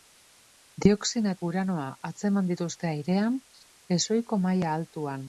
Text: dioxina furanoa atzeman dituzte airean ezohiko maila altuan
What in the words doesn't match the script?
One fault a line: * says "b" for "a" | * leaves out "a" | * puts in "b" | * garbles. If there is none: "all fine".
all fine